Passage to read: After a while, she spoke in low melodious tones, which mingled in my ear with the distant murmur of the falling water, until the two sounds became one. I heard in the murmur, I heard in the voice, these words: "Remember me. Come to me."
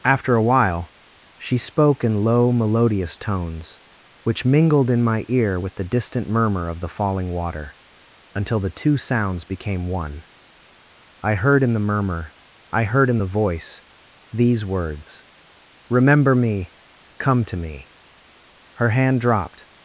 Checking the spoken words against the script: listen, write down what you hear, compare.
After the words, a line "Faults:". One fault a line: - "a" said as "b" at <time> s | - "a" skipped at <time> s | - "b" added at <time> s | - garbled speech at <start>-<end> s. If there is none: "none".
After a while, she spoke in low melodious tones, which mingled in my ear with the distant murmur of the falling water, until the two sounds became one. I heard in the murmur, I heard in the voice, these words: "Remember me. Come to me." Her hand dropped
Faults:
- "Her hand dropped" added at 18.7 s